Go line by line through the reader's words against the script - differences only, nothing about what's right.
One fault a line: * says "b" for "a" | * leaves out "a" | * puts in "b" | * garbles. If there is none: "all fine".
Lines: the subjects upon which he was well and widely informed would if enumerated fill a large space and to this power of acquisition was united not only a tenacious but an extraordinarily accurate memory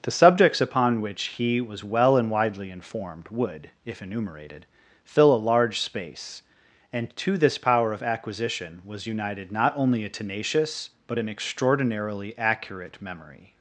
all fine